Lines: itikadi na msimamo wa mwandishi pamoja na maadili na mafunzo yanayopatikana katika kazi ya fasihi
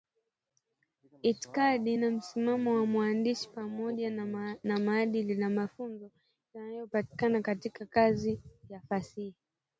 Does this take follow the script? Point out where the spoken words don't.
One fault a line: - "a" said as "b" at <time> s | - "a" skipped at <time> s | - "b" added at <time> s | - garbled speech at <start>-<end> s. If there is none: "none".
none